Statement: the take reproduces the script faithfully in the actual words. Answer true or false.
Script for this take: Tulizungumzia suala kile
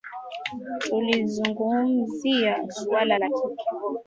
false